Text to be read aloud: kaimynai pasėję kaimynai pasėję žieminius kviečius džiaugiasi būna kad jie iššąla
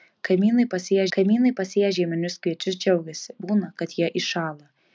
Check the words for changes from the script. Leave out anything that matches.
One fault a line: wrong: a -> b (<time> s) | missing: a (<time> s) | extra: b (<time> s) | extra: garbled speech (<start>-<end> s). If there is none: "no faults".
no faults